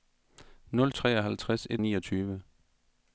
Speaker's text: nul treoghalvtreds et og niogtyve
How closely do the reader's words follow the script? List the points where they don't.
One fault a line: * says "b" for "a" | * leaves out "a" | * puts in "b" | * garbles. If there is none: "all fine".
all fine